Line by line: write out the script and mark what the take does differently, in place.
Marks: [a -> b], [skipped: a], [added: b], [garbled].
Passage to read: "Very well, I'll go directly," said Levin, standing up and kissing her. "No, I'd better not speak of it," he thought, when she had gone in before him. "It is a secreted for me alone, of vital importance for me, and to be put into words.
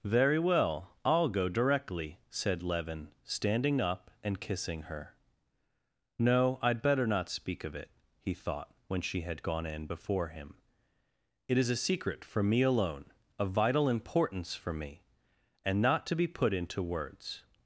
"Very well, I'll go directly," said Levin, standing up and kissing her. "No, I'd better not speak of it," he thought, when she had gone in before him. "It is a [secreted -> secret] for me alone, of vital importance for me, and [added: not] to be put into words.